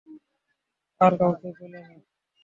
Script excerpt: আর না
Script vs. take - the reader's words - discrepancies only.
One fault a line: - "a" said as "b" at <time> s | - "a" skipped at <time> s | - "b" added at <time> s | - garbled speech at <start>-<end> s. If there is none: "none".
- "কাউকে পেলে" added at 1.2 s